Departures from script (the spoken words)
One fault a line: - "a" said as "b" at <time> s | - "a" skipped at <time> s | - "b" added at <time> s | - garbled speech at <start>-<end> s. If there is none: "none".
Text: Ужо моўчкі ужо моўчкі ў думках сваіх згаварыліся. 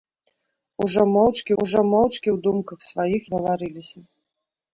none